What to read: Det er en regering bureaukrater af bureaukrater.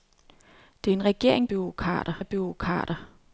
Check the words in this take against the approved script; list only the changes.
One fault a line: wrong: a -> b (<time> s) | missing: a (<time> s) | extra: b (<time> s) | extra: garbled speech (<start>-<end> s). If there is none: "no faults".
no faults